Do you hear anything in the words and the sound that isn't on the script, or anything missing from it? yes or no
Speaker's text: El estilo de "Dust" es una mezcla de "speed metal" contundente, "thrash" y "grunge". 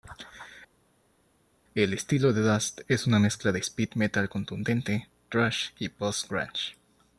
yes